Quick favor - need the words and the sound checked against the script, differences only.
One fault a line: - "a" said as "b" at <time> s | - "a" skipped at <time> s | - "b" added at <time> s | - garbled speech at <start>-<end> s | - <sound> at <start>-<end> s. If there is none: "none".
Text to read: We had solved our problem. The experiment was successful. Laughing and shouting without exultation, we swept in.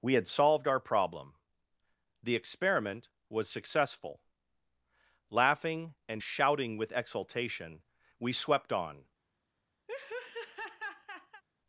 - "without" said as "with" at 6.8 s
- "in" said as "on" at 8.7 s
- laugh at 9.9-11.4 s